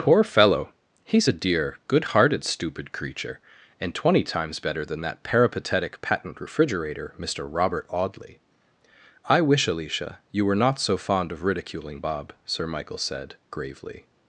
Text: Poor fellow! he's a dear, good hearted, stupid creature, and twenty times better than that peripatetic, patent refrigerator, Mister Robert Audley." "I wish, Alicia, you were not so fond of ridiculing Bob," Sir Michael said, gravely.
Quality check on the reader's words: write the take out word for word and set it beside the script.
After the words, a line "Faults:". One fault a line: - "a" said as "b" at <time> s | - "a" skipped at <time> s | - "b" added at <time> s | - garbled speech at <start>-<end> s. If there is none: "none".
Poor fellow! he's a dear, good hearted, stupid creature, and twenty times better than that peripatetic, patent refrigerator, Mister Robert Audley." "I wish, Alicia, you were not so fond of ridiculing Bob," Sir Michael said, gravely.
Faults:
none